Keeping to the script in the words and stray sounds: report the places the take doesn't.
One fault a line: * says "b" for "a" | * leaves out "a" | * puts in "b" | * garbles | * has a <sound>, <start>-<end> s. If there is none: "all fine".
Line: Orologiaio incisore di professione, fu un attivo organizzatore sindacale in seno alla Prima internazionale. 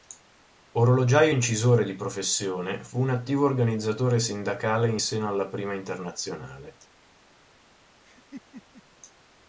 * has a laugh, 8.0-8.8 s